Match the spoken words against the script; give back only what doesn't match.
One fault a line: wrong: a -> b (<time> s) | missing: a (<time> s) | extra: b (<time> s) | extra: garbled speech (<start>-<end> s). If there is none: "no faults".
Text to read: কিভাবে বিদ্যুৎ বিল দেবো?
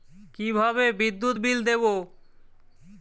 no faults